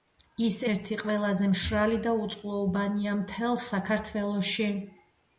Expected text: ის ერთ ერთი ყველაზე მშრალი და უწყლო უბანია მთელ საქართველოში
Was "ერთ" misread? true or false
true